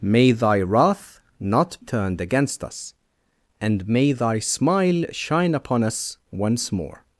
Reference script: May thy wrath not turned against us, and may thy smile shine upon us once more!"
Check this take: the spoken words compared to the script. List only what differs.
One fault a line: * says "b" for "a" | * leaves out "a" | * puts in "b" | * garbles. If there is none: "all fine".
all fine